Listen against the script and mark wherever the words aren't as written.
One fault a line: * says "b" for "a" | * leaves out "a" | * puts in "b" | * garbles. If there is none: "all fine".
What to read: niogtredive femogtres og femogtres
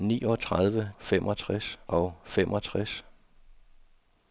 all fine